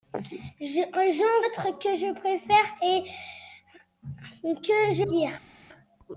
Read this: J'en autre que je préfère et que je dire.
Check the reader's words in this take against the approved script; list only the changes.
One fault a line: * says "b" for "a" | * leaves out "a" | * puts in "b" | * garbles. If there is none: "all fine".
all fine